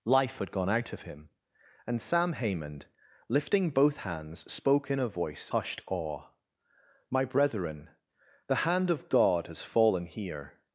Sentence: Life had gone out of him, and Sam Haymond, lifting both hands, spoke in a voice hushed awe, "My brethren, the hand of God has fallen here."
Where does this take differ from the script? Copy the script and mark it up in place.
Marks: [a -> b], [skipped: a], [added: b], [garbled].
Life had gone out of him, and Sam Haymond, lifting both hands, spoke in a voice hushed awe, "My brethren, the hand of God has fallen here."